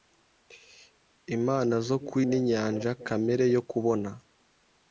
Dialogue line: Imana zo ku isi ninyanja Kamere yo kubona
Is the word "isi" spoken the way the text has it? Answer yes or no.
no